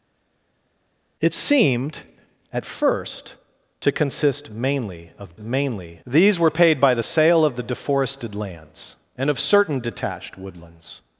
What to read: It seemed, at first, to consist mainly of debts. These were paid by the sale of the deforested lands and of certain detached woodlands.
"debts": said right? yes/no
no